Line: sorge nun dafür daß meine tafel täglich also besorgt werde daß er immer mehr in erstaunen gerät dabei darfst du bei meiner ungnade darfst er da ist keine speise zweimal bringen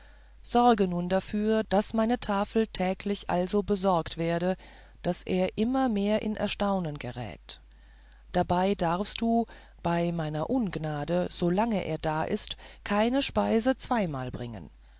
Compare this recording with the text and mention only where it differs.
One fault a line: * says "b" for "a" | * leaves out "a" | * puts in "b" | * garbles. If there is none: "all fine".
* says "solange" for "darfst"